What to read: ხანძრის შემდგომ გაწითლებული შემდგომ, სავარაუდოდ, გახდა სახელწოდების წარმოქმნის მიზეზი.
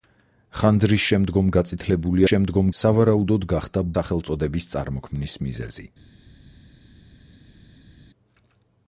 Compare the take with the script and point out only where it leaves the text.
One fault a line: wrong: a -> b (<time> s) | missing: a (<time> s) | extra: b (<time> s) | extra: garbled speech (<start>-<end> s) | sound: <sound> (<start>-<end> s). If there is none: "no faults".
no faults